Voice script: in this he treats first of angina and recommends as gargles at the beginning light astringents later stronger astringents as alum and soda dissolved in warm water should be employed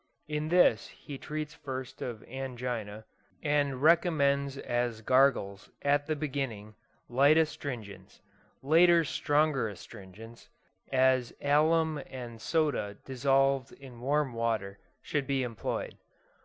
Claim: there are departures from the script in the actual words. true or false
false